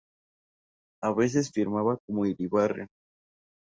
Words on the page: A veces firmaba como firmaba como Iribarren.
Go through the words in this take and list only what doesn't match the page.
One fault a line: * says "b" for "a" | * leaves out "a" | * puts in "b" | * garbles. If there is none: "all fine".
* leaves out "firmaba como"